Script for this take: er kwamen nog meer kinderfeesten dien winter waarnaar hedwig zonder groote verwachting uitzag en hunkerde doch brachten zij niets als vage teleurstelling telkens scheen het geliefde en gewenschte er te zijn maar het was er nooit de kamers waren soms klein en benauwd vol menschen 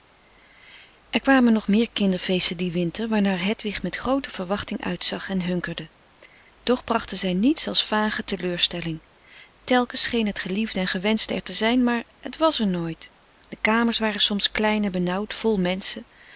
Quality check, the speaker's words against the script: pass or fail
fail